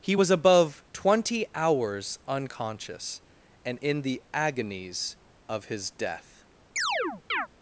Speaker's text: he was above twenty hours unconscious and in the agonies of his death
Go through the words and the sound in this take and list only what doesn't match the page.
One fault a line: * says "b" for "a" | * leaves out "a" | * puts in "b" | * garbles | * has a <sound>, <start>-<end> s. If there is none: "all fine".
* has a chirp, 6.8-7.5 s